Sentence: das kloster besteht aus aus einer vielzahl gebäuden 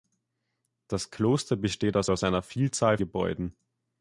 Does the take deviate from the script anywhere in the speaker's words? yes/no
no